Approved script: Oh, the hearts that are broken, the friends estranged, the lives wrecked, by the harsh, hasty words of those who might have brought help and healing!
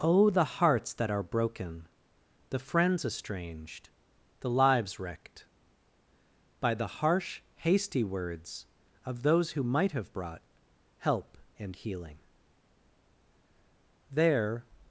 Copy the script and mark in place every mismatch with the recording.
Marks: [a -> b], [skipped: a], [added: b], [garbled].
Oh, the hearts that are broken, the friends estranged, the lives wrecked, by the harsh, hasty words of those who might have brought help and healing! [added: There]